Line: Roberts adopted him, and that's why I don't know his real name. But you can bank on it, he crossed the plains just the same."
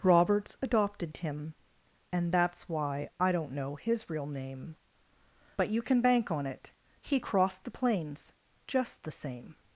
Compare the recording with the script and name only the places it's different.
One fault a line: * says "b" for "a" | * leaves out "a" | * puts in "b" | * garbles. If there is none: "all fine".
all fine